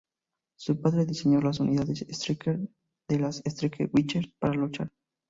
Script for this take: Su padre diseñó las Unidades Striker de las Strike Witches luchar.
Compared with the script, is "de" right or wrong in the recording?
right